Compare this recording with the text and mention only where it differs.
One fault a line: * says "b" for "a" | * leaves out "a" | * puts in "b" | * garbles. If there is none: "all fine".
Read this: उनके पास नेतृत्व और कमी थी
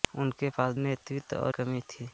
all fine